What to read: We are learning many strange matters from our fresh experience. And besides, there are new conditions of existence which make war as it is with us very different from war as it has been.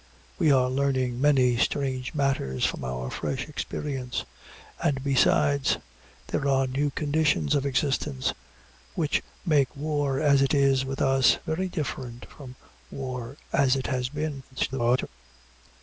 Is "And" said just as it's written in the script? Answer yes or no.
yes